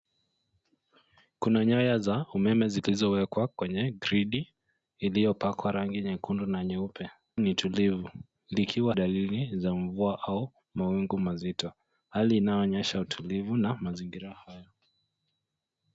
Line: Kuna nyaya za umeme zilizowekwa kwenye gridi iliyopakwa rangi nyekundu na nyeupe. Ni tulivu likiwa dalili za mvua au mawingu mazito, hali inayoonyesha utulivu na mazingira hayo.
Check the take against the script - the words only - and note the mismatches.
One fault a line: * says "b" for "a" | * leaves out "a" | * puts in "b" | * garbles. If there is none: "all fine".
all fine